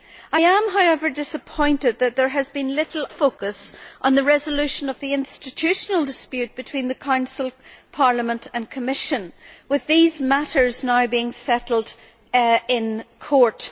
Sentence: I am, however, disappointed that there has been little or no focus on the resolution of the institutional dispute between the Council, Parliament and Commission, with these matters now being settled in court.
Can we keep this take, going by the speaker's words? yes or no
no